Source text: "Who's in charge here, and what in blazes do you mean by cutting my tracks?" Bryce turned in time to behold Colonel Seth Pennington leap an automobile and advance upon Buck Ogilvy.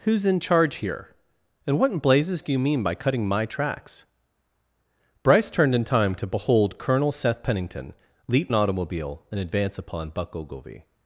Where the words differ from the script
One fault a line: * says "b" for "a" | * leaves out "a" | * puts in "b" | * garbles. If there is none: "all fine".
all fine